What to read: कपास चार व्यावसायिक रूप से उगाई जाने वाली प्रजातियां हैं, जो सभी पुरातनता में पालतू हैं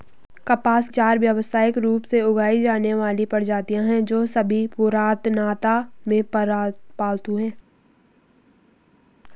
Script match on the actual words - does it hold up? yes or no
yes